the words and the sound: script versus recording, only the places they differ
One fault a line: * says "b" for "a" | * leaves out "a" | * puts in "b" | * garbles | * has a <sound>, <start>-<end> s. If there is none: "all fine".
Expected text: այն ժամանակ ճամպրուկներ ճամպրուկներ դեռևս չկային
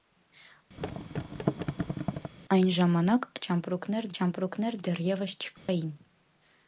* has a thud, 0.8-2.3 s
* has a dropout, 5.6-5.7 s